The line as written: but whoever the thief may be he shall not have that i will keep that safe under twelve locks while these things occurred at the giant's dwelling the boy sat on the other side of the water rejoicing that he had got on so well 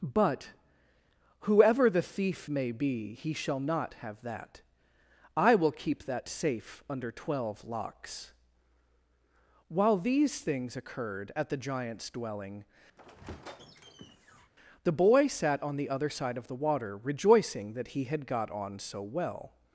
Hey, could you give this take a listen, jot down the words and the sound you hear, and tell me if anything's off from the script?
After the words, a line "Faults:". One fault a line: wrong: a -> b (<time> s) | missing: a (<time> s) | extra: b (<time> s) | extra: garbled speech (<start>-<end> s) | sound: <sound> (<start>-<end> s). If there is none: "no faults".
but whoever the thief may be he shall not have that i will keep that safe under twelve locks while these things occurred at the giant's dwelling the boy sat on the other side of the water rejoicing that he had got on so well
Faults:
sound: squeak (13.0-14.5 s)